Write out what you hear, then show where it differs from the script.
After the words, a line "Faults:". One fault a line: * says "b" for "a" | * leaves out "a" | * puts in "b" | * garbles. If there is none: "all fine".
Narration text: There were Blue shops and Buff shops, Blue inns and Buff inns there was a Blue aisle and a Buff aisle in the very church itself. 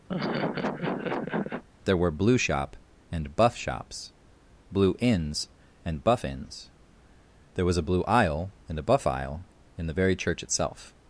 There were Blue shop and Buff shops, Blue inns and Buff inns there was a Blue aisle and a Buff aisle in the very church itself.
Faults:
* says "shop" for "shops"